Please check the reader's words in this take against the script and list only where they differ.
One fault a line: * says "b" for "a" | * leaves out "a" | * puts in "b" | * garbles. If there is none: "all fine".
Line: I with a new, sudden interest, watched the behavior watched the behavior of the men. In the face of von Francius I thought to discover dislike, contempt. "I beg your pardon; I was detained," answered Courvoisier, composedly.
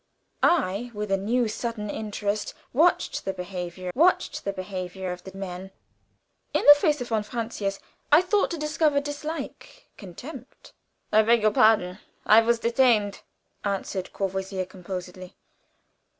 all fine